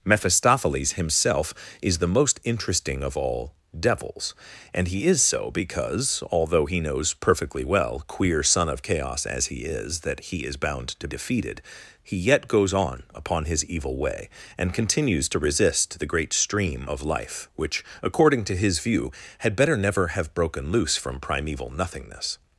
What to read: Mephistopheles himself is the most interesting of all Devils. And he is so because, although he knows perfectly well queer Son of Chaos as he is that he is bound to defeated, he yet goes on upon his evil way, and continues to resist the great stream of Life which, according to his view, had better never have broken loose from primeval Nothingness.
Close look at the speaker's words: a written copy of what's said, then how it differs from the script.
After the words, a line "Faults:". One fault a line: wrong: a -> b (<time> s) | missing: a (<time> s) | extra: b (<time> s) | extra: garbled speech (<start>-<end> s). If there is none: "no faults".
Mephistopheles himself is the most interesting of all Devils. And he is so because, although he knows perfectly well queer Son of Chaos as he is that he is bound to defeated, he yet goes on upon his evil way, and continues to resist the great stream of Life which, according to his view, had better never have broken loose from primeval Nothingness.
Faults:
no faults